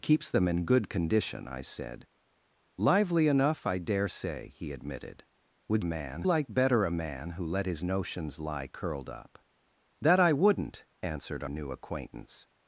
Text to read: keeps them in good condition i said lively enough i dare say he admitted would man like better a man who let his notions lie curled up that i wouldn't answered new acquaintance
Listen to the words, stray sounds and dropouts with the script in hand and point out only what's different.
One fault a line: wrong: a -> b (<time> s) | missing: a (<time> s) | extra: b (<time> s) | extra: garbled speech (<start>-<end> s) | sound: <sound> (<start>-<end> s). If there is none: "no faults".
no faults